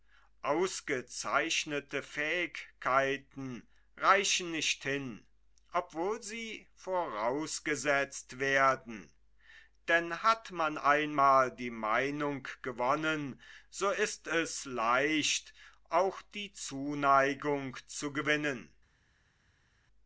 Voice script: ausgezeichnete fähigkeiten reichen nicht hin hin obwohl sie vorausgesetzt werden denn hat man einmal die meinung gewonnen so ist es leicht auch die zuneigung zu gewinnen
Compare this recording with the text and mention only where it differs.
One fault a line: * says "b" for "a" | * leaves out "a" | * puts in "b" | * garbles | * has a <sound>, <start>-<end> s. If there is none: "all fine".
* leaves out "hin"